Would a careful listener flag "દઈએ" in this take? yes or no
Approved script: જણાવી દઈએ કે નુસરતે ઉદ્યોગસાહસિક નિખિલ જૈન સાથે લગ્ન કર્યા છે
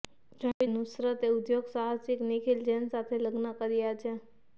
yes